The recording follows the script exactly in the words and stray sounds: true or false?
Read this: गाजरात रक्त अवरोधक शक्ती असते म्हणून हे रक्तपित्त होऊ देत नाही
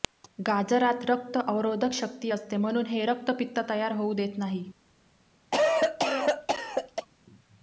false